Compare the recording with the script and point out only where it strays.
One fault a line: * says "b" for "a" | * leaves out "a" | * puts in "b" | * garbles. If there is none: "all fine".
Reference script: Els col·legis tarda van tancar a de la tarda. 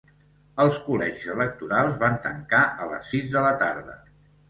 * says "electorals" for "tarda"
* puts in "les sis"